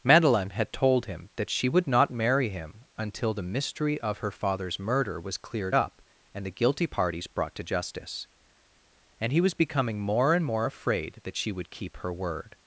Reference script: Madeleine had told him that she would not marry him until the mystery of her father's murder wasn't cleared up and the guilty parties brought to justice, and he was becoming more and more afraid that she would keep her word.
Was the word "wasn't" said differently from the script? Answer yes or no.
yes